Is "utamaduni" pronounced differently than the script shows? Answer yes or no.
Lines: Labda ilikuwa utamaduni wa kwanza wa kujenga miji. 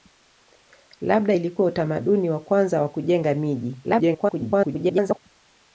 no